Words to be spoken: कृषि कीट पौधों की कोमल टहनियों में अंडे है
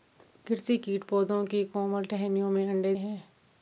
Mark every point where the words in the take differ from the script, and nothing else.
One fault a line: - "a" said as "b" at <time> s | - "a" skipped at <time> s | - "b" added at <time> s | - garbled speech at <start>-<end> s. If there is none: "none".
none